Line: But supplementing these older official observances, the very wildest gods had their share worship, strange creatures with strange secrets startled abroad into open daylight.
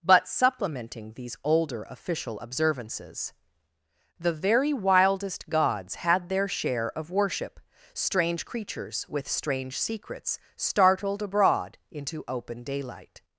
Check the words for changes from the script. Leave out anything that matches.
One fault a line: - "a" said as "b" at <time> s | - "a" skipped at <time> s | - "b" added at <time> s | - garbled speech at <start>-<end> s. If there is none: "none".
- "of" added at 7.0 s